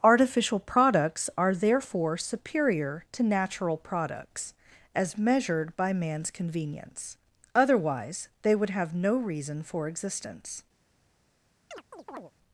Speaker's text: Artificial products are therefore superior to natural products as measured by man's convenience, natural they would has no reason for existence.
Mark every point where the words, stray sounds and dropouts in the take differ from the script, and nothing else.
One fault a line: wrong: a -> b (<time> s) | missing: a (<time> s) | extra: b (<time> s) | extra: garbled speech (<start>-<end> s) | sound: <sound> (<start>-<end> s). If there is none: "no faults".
wrong: natural -> otherwise (7.5 s)
wrong: has -> have (8.7 s)
sound: chirp (11.7-12.3 s)